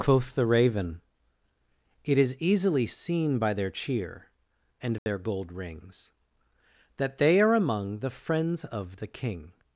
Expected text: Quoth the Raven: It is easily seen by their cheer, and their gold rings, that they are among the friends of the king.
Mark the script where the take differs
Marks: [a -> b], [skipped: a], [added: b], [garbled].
Quoth the Raven: It is easily seen by their cheer, and their gold rings, that they are among the friends of the king.